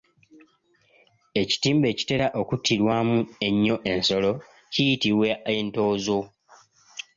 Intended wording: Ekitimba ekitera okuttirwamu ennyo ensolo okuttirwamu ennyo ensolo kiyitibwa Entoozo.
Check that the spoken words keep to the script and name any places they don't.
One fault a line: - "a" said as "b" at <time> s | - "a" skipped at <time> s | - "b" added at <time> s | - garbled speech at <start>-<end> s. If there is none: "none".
- "okuttirwamu ennyo ensolo" skipped at 4.3 s